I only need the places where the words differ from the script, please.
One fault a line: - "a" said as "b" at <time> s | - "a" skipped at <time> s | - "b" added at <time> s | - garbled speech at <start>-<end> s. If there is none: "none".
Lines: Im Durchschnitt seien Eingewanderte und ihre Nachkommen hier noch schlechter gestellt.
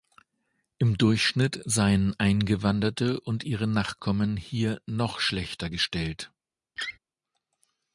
none